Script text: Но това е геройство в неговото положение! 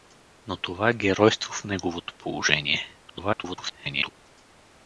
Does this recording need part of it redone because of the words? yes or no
yes